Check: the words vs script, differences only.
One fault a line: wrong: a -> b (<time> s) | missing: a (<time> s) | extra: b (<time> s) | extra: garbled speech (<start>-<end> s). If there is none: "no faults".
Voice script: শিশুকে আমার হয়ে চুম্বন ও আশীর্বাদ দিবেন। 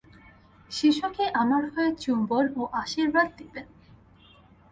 no faults